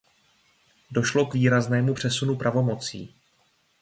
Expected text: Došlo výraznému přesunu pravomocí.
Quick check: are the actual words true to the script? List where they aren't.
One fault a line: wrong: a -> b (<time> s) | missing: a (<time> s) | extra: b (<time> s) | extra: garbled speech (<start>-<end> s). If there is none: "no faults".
extra: k (1.2 s)